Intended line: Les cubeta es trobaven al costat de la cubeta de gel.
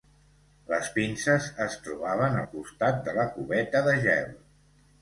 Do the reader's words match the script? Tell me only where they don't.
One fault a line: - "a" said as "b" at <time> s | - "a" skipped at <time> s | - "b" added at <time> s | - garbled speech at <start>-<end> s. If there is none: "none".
- "cubeta" said as "pinces" at 1.0 s